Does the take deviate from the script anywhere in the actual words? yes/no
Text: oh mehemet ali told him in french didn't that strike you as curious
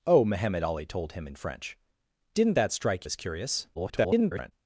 yes